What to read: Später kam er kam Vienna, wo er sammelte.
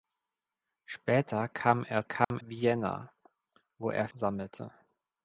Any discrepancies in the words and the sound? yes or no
yes